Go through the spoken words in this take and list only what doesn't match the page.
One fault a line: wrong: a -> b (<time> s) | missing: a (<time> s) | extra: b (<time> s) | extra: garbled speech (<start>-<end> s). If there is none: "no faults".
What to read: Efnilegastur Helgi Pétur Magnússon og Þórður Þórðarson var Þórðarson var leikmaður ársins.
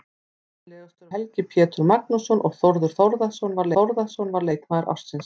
no faults